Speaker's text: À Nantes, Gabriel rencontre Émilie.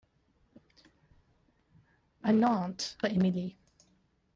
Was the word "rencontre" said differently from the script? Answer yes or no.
yes